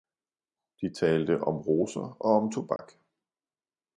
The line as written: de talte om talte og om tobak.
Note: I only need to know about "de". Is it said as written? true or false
true